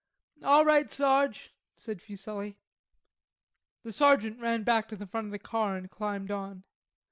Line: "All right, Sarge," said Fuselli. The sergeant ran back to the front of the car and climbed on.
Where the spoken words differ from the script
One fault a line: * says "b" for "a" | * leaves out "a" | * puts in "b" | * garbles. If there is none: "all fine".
all fine